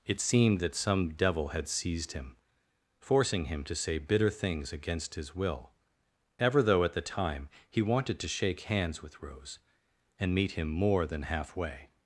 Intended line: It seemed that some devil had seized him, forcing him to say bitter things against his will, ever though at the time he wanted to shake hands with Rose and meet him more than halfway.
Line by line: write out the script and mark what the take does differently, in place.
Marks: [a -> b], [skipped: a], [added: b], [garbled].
It seemed that some devil had seized him, forcing him to say bitter things against his will, ever though at the time he wanted to shake hands with Rose and meet him more than halfway.